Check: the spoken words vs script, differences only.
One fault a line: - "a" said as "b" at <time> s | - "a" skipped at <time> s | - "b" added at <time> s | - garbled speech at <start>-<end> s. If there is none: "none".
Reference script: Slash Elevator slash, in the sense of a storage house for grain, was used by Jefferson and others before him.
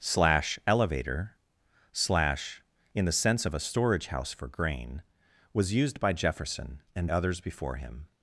none